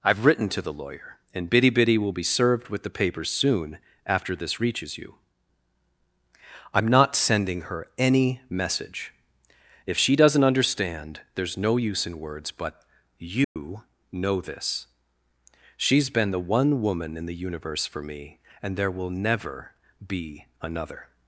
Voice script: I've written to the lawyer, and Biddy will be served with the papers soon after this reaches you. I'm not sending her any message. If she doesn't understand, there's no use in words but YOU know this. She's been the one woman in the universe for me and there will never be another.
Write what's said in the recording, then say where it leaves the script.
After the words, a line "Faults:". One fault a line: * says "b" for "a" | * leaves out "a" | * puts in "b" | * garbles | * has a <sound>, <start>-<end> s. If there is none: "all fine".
I've written to the lawyer, and Biddy Biddy will be served with the papers soon after this reaches you. I'm not sending her any message. If she doesn't understand, there's no use in words but YOU know this. She's been the one woman in the universe for me and there will never be another.
Faults:
* puts in "Biddy"
* has a dropout, 13.4-13.6 s